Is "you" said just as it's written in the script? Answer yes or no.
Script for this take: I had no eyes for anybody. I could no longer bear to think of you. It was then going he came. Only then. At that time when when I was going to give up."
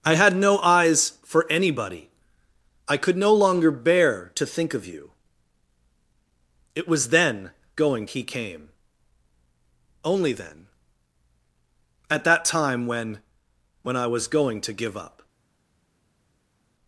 yes